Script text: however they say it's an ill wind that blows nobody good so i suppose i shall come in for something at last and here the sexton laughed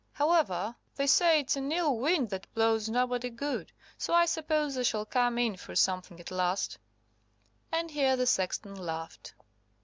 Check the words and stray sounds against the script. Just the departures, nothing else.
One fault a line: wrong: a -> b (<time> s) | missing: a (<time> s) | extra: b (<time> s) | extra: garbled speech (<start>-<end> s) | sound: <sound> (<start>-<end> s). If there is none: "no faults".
no faults